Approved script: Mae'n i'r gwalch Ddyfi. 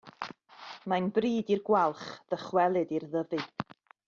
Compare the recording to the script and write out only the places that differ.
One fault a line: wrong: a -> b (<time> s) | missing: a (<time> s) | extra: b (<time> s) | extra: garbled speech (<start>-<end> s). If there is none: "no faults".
extra: bryd (1.2 s)
extra: ddychwelyd i'r (2.4 s)